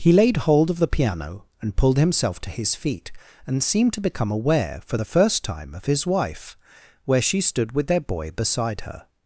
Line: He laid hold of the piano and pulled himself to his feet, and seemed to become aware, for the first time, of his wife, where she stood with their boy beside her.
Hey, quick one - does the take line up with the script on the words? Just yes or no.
yes